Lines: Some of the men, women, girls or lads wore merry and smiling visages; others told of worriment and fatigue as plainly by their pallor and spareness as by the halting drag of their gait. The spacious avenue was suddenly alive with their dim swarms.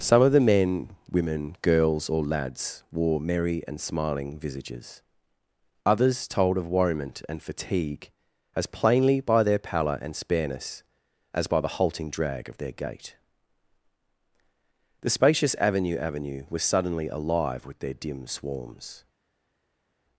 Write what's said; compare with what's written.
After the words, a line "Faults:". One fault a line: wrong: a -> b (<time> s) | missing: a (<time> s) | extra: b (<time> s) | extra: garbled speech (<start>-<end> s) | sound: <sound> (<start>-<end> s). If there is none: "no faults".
Some of the men, women, girls or lads wore merry and smiling visages; others told of worriment and fatigue as plainly by their pallor and spareness as by the halting drag of their gait. The spacious avenue avenue was suddenly alive with their dim swarms.
Faults:
extra: avenue (16.0 s)